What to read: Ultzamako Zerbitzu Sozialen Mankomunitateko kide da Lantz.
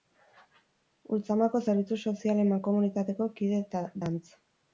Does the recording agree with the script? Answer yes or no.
no